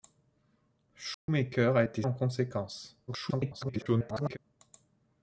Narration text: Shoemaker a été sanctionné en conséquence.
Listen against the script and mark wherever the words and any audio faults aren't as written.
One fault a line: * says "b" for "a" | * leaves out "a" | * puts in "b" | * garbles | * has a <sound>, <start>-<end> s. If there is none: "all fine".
* has a dropout, 1.1-1.3 s
* leaves out "sanctionné"
* garbles